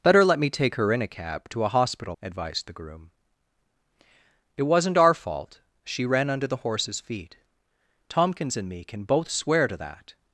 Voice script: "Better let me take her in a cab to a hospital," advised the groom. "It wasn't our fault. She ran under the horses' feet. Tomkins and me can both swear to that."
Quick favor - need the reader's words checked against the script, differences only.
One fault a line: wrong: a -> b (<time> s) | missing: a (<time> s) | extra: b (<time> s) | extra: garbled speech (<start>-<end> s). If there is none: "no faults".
no faults